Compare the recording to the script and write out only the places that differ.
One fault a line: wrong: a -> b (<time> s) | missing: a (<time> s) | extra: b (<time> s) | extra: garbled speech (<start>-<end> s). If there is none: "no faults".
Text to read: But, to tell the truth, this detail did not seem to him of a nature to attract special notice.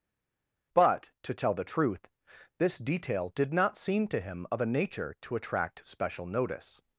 no faults